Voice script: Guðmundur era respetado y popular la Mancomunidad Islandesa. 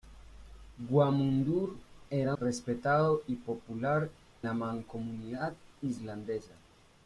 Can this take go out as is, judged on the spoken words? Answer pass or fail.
pass